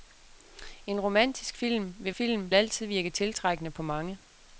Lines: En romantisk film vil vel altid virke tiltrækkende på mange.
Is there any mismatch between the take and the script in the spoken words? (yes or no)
yes